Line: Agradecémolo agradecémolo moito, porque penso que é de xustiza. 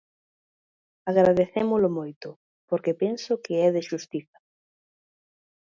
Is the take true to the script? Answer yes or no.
no